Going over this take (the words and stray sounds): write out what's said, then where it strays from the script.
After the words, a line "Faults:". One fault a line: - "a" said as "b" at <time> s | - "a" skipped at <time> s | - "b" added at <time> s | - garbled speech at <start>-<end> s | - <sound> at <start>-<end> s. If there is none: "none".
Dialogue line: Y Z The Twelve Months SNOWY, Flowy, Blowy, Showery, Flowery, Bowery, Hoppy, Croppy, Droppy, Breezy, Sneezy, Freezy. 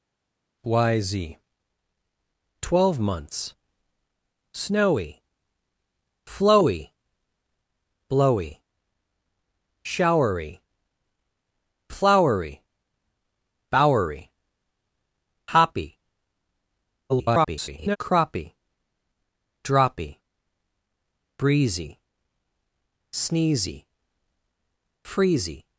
Y Z Twelve Months SNOWY, Flowy, Blowy, Showery, Flowery, Bowery, Hoppy, [garbled] Croppy, Droppy, Breezy, Sneezy, Freezy.
Faults:
- "The" skipped at 1.4 s
- garbled speech at 17.1-18.0 s